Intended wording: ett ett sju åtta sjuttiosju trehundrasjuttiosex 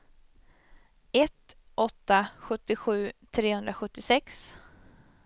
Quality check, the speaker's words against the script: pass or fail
fail